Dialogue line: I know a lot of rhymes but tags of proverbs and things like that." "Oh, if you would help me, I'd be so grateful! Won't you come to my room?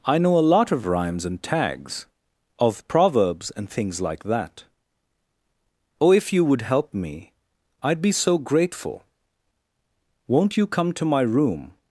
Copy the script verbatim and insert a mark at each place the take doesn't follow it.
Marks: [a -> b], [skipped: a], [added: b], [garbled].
I know a lot of rhymes [but -> and] tags of proverbs and things like that." "Oh, if you would help me, I'd be so grateful! Won't you come to my room?